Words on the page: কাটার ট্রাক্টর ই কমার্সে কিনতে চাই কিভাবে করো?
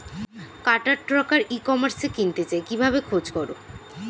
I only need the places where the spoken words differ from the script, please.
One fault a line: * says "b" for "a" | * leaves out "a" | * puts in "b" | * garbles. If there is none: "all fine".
* puts in "খোঁজ"